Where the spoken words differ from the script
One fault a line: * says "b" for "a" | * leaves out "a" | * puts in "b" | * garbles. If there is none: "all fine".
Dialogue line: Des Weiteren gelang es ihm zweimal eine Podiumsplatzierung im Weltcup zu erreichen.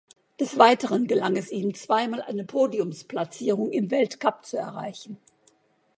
all fine